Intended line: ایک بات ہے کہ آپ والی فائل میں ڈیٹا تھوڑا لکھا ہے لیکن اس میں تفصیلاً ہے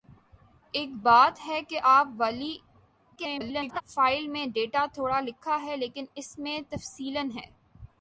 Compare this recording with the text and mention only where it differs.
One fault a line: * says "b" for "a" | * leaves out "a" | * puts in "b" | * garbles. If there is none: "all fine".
* garbles